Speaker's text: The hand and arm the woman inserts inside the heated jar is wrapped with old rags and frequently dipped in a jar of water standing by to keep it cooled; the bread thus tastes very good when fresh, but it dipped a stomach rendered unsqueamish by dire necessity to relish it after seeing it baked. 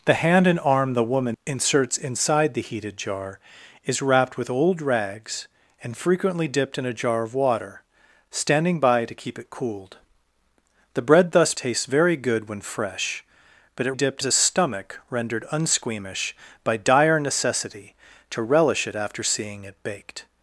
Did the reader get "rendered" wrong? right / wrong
right